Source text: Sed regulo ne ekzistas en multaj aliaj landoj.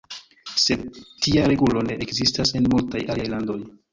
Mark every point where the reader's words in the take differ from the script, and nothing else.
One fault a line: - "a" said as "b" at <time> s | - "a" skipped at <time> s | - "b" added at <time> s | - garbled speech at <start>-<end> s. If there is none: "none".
- "tia" added at 1.2 s